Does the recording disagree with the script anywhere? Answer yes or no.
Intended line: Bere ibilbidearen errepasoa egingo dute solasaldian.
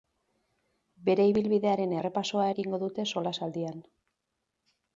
no